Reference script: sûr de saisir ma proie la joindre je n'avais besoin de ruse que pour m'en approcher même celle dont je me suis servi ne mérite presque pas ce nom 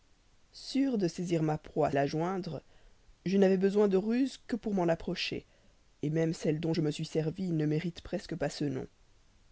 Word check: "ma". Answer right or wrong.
right